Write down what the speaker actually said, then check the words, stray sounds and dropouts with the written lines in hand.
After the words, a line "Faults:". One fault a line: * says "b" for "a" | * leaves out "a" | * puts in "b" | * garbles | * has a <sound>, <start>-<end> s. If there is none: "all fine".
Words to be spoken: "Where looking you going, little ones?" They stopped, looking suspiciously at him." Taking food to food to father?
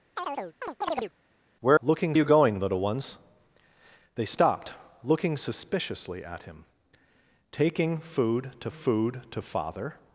"Where looking you going, little ones?" They stopped, looking suspiciously at him." Taking food to food to father?
Faults:
* has a chirp, 0.2-1.1 s